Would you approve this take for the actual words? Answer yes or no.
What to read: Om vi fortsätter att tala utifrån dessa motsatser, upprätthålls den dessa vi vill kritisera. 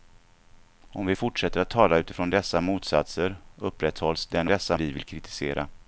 yes